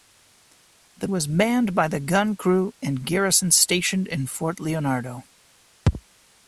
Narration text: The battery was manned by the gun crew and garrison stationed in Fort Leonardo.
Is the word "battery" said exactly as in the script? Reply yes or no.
no